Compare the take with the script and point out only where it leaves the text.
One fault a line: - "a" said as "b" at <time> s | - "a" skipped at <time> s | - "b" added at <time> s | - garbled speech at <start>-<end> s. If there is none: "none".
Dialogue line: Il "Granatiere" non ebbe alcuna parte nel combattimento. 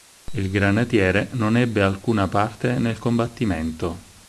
none